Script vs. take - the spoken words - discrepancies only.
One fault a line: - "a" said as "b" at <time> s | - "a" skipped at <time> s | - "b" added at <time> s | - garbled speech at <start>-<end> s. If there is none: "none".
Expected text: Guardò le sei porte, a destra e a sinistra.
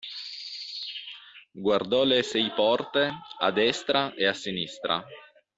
none